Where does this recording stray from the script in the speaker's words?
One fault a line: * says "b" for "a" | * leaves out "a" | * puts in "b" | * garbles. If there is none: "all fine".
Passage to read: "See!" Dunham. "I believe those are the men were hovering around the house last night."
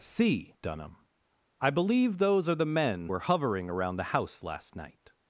all fine